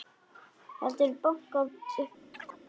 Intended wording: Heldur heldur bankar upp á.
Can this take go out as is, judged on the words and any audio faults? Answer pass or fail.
fail